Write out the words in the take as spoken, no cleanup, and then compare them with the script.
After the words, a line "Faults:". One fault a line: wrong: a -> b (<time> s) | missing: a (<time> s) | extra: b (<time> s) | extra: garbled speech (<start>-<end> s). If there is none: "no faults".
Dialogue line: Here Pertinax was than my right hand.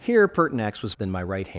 Here Pertinax was than my right hand.
Faults:
no faults